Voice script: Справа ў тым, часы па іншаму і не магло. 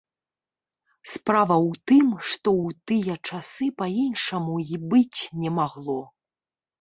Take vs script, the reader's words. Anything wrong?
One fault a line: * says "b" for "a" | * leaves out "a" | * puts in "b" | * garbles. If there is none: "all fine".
* puts in "што ў тыя"
* puts in "быць"